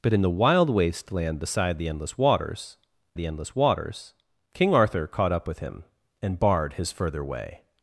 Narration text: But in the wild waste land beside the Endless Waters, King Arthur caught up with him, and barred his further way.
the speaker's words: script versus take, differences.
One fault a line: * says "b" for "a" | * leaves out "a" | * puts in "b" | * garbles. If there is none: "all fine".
* puts in "the Endless Waters"